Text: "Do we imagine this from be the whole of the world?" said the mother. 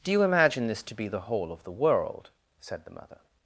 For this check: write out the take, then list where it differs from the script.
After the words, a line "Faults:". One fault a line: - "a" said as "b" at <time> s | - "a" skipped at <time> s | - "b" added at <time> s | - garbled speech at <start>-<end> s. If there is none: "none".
"Do you imagine this to be the whole of the world?" said the mother.
Faults:
- "we" said as "you" at 0.1 s
- "from" said as "to" at 0.8 s